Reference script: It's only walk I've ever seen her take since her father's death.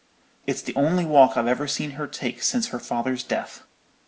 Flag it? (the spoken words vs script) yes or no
yes